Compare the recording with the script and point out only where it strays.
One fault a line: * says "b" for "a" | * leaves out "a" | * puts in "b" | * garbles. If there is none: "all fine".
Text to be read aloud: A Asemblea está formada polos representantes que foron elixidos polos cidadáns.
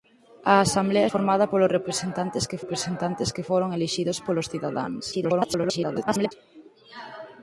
* leaves out "está"
* puts in "representantes que"
* garbles